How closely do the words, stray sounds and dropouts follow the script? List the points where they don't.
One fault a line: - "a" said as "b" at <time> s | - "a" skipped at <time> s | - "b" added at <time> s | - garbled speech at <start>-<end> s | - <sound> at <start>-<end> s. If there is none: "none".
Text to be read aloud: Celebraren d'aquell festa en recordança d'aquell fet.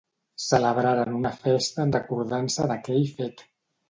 - "d'aquell" said as "una" at 1.2 s